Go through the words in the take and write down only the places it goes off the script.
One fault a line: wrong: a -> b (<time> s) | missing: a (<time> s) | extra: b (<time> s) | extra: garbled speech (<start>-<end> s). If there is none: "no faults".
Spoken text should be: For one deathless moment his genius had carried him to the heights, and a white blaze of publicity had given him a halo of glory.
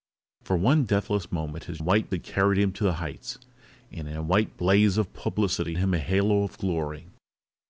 wrong: genius -> white (1.8 s)
missing: had given (5.8 s)